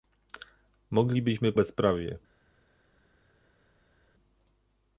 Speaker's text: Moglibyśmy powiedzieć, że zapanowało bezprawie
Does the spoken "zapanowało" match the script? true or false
false